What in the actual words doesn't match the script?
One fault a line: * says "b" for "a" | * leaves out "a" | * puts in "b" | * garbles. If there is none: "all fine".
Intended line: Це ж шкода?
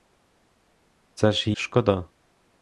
all fine